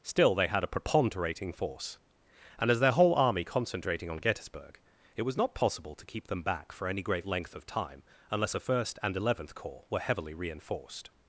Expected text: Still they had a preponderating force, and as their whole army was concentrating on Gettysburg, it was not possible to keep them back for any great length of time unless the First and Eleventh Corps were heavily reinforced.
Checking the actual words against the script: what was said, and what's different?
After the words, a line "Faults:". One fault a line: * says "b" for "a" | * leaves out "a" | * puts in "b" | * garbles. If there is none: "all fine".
Still they had a preponderating force, and as their whole army concentrating on Gettysburg, it was not possible to keep them back for any great length of time unless a First and Eleventh Corps were heavily reinforced.
Faults:
* leaves out "was"
* says "a" for "the"